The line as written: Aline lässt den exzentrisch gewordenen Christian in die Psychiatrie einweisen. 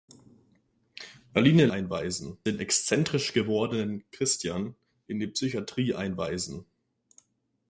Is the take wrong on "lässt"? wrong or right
wrong